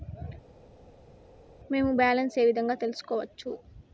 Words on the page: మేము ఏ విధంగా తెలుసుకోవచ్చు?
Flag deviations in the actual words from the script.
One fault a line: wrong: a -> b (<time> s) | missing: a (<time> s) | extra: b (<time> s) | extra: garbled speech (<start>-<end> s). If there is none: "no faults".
extra: బ్యాలెన్స్ (2.0 s)